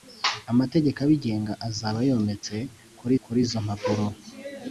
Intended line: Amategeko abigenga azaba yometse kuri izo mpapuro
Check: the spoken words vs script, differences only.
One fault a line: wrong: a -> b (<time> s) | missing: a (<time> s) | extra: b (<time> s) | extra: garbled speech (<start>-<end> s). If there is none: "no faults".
extra: kuri (3.2 s)